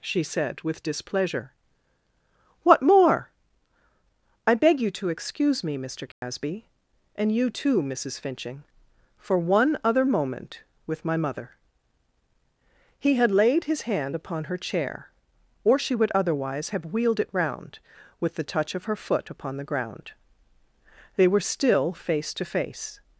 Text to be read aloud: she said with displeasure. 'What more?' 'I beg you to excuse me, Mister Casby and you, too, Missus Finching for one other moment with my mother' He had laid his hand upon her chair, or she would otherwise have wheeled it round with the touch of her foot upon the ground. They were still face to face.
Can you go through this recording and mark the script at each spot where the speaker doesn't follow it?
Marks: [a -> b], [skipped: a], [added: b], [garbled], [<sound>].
she said with displeasure. 'What more?' 'I beg you to excuse me, Mister Casby [dropout] and you, too, Missus Finching for one other moment with my mother' He had laid his hand upon her chair, or she would otherwise have wheeled it round with the touch of her foot upon the ground. They were still face to face.